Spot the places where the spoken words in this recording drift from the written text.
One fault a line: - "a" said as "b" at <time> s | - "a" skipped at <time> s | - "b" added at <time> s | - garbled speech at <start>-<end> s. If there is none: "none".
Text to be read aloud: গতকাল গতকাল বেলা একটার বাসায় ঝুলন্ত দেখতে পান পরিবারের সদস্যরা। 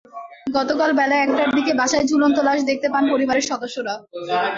- "গতকাল" skipped at 0.9 s
- "দিকে" added at 1.6 s
- "লাশ" added at 2.5 s